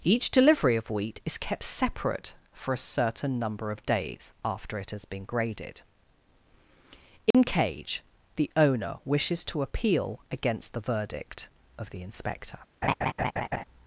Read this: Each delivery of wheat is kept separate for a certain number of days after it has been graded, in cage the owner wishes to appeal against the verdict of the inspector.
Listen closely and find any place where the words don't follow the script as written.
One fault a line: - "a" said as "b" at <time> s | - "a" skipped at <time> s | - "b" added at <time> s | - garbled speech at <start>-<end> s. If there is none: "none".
none